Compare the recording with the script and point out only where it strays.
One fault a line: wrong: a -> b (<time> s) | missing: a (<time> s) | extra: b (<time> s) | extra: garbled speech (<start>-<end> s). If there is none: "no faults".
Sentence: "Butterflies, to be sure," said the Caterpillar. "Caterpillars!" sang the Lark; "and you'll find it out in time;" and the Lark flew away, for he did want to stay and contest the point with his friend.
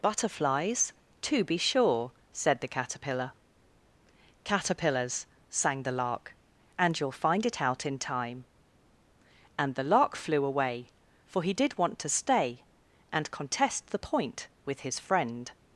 no faults